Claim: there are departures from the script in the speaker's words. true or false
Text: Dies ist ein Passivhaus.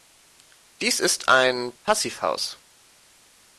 false